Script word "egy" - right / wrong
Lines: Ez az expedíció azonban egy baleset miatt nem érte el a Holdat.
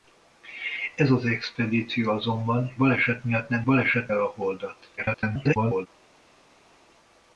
wrong